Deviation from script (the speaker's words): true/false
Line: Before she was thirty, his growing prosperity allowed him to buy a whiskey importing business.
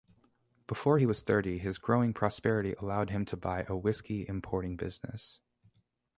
true